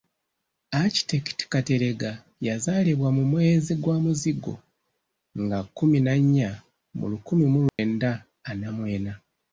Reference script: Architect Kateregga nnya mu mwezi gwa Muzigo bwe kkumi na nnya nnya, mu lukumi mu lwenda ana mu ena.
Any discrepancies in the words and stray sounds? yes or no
yes